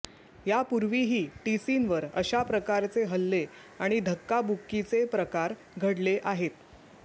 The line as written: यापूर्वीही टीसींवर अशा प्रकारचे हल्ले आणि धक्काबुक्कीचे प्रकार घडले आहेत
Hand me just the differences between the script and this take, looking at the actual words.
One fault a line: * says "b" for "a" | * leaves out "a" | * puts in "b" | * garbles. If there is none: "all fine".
all fine